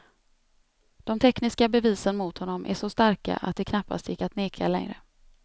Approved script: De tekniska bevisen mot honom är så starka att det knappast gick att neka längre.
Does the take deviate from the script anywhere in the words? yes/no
no